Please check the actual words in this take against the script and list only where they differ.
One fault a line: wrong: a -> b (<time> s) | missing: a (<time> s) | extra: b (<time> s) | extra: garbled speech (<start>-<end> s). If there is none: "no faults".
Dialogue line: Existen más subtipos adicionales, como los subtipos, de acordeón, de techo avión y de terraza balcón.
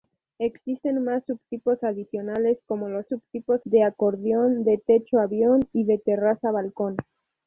no faults